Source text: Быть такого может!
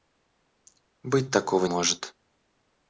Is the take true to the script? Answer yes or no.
yes